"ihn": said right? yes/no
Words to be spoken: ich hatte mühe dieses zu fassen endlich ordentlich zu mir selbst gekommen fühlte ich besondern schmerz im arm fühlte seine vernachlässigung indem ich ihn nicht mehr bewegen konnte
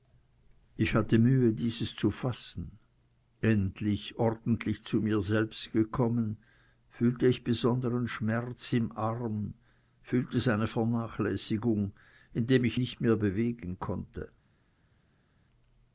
no